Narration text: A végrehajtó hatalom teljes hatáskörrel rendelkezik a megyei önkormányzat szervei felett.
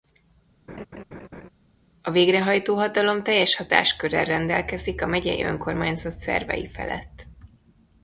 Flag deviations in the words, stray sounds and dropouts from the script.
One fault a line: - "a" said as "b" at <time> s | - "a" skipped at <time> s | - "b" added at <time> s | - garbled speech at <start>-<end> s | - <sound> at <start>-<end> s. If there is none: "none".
- laugh at 0.7-1.5 s